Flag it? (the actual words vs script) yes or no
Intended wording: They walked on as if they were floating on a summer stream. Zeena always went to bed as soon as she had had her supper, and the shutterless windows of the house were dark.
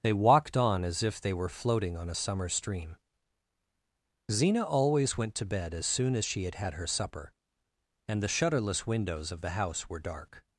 no